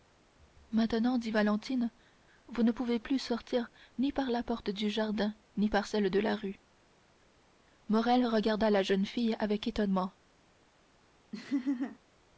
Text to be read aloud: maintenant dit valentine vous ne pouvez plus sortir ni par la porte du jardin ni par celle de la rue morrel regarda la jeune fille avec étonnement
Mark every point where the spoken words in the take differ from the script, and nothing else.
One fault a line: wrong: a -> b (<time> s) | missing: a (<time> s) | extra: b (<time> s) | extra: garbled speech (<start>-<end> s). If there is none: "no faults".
no faults